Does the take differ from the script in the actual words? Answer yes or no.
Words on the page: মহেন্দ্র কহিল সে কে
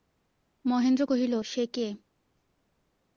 no